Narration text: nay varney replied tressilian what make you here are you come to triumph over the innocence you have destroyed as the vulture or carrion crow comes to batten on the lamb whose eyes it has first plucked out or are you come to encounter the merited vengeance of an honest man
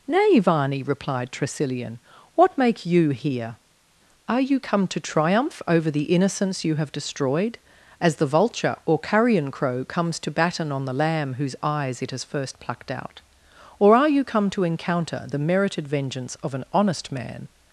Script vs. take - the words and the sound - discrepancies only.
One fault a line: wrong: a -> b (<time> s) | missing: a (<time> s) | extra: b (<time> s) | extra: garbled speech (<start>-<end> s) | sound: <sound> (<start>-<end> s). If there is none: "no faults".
no faults